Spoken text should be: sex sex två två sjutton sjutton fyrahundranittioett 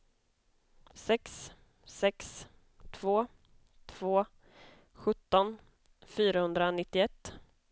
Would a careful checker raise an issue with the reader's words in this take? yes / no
yes